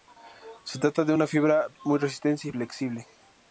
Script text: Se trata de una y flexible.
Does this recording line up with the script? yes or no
no